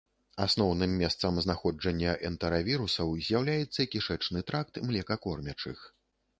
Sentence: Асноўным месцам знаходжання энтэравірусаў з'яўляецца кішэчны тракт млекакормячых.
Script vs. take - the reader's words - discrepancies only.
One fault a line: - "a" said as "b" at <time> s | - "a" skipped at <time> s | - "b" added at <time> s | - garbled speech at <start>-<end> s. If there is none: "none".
none